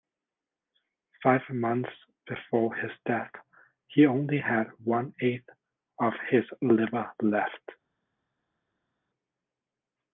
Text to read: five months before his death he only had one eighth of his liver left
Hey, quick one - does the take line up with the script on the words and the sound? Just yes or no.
yes